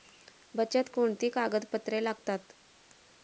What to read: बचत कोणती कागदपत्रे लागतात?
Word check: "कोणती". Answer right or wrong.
right